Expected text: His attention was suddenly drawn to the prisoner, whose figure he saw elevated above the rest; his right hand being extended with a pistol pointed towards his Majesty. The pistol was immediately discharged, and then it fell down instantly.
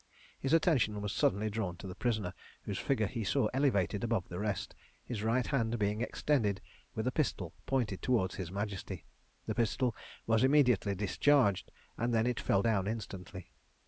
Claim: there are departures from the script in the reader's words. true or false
false